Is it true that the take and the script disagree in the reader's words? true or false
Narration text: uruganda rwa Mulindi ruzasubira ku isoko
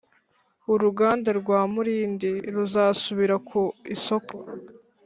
false